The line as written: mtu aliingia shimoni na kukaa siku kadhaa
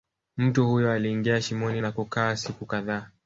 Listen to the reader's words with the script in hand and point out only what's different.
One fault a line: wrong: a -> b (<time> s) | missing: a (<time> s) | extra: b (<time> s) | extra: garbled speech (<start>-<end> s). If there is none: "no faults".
extra: huyo (0.7 s)